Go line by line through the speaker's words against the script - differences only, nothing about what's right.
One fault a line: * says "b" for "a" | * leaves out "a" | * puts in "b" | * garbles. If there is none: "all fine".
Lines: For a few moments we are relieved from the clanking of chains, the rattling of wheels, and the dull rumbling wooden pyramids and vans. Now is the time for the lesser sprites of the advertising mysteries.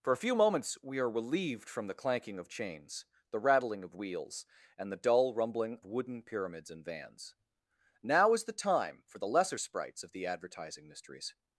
all fine